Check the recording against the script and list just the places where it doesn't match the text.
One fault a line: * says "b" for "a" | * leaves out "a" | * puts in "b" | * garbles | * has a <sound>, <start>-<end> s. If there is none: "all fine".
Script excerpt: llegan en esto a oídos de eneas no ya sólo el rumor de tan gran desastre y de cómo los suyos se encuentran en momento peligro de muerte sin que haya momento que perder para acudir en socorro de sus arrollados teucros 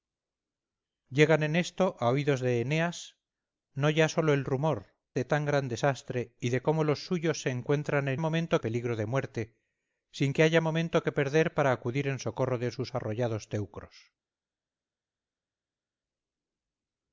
all fine